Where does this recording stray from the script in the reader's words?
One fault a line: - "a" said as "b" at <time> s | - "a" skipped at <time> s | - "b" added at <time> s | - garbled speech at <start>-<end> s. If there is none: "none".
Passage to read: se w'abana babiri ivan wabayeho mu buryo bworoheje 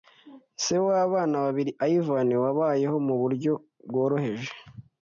none